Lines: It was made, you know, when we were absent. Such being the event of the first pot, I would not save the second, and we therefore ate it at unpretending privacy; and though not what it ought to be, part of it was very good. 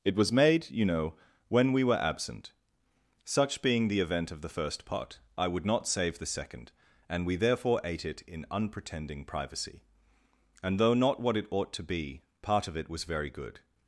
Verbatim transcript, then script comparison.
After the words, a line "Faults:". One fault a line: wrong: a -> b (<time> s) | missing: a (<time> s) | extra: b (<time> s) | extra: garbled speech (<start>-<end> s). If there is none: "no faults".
It was made, you know, when we were absent. Such being the event of the first pot, I would not save the second, and we therefore ate it in unpretending privacy; and though not what it ought to be, part of it was very good.
Faults:
wrong: at -> in (8.2 s)